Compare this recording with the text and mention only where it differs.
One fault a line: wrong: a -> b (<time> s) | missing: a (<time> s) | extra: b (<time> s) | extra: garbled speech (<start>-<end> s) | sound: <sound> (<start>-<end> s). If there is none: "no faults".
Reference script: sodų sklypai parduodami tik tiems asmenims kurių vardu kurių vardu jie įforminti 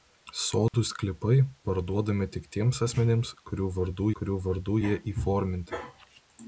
sound: dropout (0.7-0.7 s)